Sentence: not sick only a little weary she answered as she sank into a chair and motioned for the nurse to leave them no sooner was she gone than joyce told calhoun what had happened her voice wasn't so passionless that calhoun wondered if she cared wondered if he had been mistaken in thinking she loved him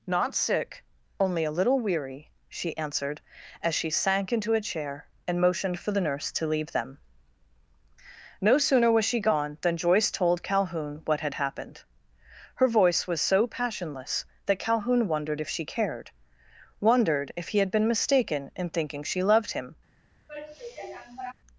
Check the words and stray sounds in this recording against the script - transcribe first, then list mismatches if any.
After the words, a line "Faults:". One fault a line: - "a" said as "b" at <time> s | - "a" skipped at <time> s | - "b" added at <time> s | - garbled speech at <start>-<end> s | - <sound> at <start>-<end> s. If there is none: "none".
not sick only a little weary she answered as she sank into a chair and motioned for the nurse to leave them no sooner was she gone than joyce told calhoun what had happened her voice was so passionless that calhoun wondered if she cared wondered if he had been mistaken in thinking she loved him
Faults:
- "wasn't" said as "was" at 13.1 s
- sigh at 20.3-21.3 s